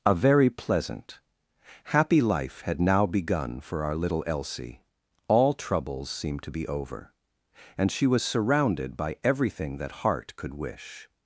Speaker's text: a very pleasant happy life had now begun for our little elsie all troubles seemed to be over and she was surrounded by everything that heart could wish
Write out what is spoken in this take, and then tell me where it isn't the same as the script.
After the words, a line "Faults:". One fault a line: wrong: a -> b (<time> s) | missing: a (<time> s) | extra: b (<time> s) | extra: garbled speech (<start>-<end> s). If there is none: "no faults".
a very pleasant happy life had now begun for our little elsie all troubles seemed to be over and she was surrounded by everything that heart could wish
Faults:
no faults